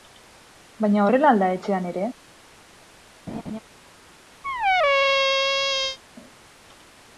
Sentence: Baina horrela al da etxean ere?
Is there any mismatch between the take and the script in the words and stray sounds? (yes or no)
yes